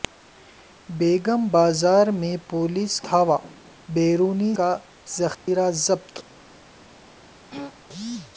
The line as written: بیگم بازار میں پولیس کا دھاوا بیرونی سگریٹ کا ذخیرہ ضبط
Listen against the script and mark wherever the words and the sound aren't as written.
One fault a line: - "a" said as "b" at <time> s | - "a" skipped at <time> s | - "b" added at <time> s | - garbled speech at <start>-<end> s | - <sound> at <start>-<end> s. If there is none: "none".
- "کا" skipped at 2.9 s
- "سگریٹ" skipped at 4.5 s
- dropout at 5.3-5.5 s
- throat clearing at 7.5-7.7 s